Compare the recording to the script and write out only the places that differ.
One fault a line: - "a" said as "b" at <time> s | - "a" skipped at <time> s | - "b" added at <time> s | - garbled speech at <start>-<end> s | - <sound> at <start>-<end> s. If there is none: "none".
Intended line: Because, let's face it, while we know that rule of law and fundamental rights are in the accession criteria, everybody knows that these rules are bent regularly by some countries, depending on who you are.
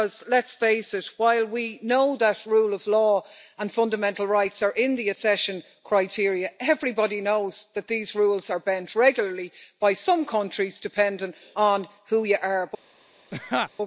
- laugh at 13.3-13.7 s